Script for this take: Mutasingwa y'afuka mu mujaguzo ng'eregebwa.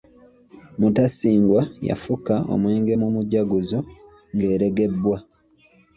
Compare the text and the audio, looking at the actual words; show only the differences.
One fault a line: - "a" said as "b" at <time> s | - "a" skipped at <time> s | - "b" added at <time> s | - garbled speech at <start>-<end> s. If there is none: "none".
- "omwenge" added at 2.5 s